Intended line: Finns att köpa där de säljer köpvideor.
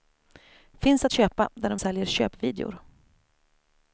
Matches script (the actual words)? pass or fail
pass